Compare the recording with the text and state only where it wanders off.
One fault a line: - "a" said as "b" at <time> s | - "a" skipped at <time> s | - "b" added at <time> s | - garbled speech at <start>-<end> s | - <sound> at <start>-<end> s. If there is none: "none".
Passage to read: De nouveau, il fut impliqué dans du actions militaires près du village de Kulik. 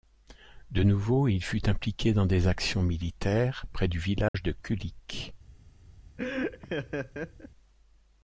- "du" said as "des" at 2.3 s
- dropout at 4.3-4.3 s
- laugh at 6.2-7.5 s